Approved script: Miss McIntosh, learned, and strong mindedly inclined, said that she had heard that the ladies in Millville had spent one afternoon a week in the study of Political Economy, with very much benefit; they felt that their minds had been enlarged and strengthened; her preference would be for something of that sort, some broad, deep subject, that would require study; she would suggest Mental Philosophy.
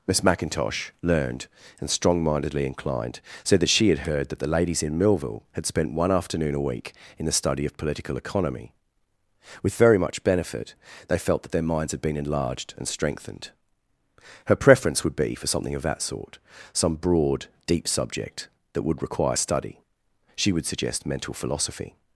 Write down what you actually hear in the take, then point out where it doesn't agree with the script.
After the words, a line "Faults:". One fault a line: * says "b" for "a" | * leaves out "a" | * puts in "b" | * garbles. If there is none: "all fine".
Miss McIntosh, learned, and strong mindedly inclined, said that she had heard that the ladies in Millville had spent one afternoon a week in the study of Political Economy, with very much benefit; they felt that their minds had been enlarged and strengthened; her preference would be for something of that sort, some broad, deep subject, that would require study; she would suggest Mental Philosophy.
Faults:
all fine